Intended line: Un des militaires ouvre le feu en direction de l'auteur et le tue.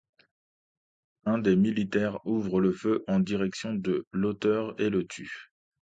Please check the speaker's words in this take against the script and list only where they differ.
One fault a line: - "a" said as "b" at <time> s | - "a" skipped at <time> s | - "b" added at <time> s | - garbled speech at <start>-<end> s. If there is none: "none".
none